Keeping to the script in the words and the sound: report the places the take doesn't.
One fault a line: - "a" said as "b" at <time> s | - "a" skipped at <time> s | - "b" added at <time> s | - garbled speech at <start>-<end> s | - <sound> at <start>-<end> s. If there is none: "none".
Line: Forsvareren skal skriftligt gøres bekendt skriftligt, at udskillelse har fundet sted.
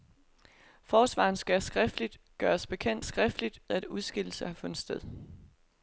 none